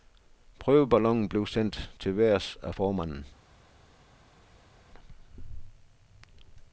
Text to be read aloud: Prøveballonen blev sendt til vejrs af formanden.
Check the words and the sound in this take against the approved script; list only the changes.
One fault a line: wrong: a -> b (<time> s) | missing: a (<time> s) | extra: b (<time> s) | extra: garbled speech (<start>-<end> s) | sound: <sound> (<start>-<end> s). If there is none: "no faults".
no faults